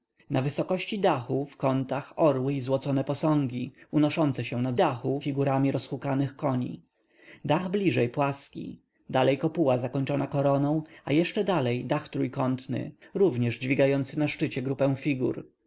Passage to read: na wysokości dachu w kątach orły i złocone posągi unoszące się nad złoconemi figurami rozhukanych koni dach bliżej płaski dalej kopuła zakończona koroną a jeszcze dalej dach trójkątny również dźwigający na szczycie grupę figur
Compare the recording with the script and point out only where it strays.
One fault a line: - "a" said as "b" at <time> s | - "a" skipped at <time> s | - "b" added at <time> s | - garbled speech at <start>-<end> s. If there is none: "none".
- "złoconemi" said as "dachu" at 4.7 s